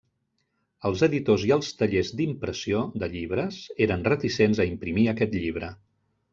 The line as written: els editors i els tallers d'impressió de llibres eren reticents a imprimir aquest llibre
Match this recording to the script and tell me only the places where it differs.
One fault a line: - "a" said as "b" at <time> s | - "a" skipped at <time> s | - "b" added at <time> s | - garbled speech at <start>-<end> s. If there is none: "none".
none